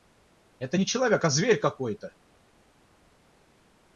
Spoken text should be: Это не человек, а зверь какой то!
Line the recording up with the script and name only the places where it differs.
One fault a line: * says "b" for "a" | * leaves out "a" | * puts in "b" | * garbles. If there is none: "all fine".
all fine